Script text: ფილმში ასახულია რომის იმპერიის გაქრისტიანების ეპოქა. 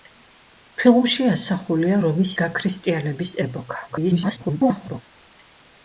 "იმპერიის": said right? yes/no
no